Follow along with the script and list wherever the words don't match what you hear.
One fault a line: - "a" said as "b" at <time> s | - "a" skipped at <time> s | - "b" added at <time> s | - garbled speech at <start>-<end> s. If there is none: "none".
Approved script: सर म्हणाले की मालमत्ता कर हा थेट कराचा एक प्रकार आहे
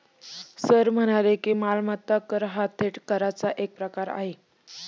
none